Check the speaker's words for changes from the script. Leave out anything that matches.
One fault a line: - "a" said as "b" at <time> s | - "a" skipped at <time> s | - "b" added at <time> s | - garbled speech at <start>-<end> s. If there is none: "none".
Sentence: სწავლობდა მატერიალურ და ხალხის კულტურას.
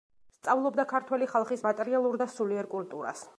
- "ქართველი ხალხის" added at 0.9 s
- "ხალხის" said as "სულიერ" at 2.4 s